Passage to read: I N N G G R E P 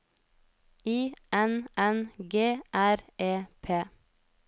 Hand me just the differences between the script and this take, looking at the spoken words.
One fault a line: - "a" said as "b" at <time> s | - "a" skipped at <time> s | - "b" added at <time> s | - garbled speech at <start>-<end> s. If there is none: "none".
- "G" skipped at 2.6 s